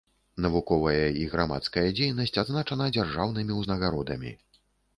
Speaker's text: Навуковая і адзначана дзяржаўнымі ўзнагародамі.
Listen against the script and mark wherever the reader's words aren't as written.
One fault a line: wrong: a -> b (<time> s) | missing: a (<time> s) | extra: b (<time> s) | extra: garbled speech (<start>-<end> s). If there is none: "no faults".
extra: грамадская дзейнасць (1.3 s)